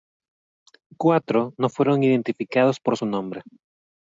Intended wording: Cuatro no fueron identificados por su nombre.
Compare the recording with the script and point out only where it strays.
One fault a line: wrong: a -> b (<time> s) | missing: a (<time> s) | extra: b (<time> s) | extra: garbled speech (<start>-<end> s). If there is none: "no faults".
no faults